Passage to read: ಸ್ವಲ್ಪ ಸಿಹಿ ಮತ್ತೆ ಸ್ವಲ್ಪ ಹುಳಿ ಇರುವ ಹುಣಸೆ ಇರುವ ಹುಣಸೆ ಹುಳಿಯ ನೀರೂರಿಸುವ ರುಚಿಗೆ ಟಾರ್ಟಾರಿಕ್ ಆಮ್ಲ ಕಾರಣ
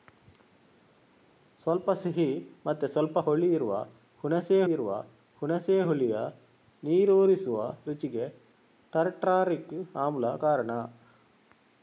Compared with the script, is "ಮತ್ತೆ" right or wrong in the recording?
right